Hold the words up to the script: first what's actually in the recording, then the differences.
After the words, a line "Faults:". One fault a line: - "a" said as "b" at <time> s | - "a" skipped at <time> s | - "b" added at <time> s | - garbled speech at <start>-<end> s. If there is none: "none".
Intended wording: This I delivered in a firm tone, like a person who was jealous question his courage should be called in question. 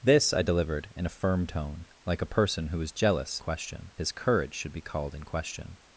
This I delivered in a firm tone, like a person who was jealous question his courage should be called in question.
Faults:
none